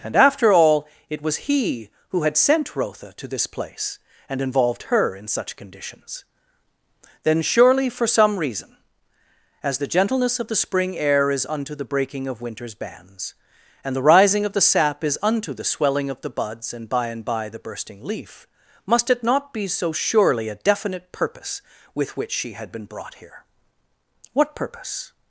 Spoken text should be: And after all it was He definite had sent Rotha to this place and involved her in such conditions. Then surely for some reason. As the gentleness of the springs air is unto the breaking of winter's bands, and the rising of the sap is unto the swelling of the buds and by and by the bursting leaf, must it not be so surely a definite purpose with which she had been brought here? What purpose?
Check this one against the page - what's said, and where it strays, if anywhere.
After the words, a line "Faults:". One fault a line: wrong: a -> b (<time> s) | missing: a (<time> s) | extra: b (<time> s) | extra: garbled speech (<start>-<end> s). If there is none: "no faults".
And after all it was He who had sent Rotha to this place and involved her in such conditions. Then surely for some reason. As the gentleness of the spring air is unto the breaking of winter's bands, and the rising of the sap is unto the swelling of the buds and by and by the bursting leaf, must it not be so surely a definite purpose with which she had been brought here? What purpose?
Faults:
wrong: definite -> who (2.1 s)
wrong: springs -> spring (10.6 s)